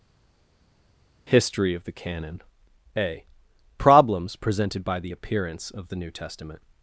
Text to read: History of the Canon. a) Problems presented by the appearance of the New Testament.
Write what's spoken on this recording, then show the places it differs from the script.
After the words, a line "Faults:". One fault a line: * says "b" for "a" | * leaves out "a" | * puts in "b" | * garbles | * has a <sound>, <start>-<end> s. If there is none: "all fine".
History of the Canon. a) Problems presented by the appearance of the New Testament.
Faults:
all fine